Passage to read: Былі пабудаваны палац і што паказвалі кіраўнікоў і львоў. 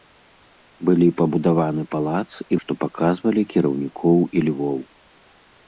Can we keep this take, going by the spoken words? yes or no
yes